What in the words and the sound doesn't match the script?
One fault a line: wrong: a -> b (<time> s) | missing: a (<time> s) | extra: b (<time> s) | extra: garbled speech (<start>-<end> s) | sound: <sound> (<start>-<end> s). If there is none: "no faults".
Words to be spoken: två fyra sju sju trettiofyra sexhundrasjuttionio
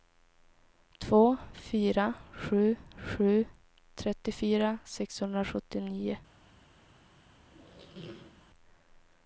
sound: squeak (7.4-8.4 s)